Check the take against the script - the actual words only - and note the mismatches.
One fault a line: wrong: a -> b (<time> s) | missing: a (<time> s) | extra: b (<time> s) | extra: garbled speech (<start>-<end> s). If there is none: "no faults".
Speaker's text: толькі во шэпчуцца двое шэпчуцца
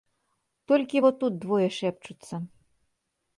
wrong: шэпчуцца -> тут (1.2 s)